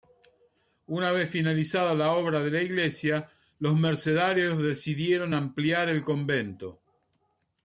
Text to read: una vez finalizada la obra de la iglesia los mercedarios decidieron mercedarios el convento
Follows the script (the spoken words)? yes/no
no